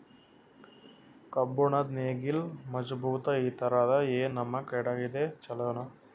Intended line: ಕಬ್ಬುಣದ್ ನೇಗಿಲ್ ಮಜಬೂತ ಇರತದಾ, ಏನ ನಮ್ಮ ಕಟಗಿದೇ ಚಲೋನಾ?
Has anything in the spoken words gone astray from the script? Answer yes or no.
no